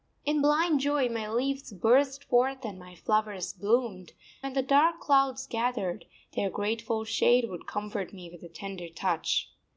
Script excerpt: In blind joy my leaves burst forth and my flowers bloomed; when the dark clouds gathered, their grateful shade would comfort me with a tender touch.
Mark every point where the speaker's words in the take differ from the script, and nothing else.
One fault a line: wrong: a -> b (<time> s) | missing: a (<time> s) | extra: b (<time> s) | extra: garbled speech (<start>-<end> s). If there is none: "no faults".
no faults